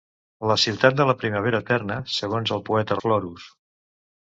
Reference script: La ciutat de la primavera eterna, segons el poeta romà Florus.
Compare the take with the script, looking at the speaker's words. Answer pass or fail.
fail